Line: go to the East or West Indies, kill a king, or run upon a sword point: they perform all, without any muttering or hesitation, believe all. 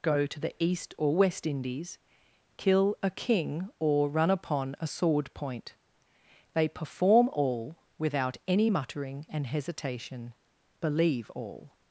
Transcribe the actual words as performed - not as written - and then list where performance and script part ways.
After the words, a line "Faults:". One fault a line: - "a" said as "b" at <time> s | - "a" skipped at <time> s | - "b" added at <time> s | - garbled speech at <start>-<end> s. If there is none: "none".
go to the East or West Indies, kill a king, or run upon a sword point: they perform all, without any muttering and hesitation, believe all.
Faults:
- "or" said as "and" at 9.3 s